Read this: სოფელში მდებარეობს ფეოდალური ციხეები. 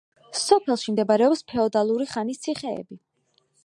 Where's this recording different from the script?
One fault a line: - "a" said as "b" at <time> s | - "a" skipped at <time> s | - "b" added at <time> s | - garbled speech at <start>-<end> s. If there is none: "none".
- "ხანის" added at 2.1 s